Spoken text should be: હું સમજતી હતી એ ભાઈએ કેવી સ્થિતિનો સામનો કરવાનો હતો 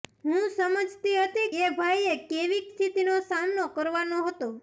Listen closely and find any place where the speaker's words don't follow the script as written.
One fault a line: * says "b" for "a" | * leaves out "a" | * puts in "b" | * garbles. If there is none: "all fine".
all fine